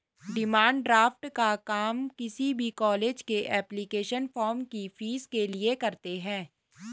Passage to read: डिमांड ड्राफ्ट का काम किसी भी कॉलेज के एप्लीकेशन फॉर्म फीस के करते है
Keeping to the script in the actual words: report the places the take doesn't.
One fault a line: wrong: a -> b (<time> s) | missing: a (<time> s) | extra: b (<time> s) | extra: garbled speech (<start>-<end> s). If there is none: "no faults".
extra: की (4.7 s)
extra: लिए (5.5 s)